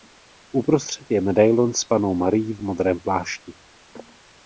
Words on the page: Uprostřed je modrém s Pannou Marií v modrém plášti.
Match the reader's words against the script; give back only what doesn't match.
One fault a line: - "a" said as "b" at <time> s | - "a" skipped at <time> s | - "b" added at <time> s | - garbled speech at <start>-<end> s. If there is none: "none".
- "modrém" said as "medailon" at 1.2 s